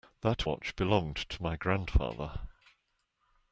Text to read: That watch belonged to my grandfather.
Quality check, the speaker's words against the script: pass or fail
pass